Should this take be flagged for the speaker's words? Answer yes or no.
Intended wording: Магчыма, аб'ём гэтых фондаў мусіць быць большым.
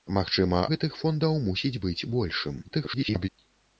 yes